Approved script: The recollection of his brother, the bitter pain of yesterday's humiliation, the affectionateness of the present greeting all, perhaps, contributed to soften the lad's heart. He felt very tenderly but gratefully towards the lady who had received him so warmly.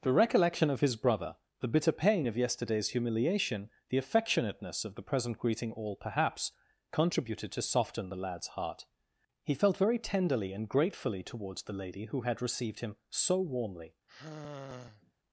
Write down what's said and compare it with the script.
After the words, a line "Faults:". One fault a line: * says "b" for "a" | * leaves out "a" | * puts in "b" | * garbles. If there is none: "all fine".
The recollection of his brother, the bitter pain of yesterday's humiliation, the affectionateness of the present greeting all, perhaps, contributed to soften the lad's heart. He felt very tenderly and gratefully towards the lady who had received him so warmly.
Faults:
* says "and" for "but"